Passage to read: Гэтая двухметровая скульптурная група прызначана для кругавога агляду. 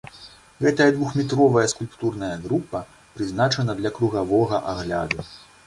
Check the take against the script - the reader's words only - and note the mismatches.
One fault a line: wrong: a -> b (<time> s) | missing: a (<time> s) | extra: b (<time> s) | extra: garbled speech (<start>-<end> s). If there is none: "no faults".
no faults